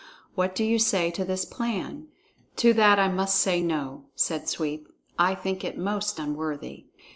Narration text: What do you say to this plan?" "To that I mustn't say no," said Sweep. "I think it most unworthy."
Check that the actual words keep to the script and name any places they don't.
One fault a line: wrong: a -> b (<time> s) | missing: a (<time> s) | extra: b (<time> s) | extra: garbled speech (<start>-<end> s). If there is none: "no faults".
wrong: mustn't -> must (3.1 s)